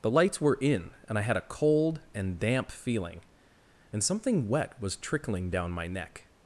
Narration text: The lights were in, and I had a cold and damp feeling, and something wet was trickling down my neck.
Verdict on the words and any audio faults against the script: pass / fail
pass